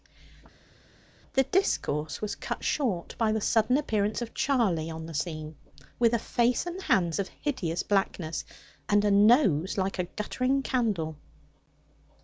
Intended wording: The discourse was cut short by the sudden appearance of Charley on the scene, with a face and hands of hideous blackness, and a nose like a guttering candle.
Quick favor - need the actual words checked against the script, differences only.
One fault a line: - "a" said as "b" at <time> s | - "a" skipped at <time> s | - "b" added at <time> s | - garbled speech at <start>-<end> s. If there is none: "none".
none